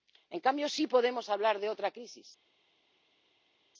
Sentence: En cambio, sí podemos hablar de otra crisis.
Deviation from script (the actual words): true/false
false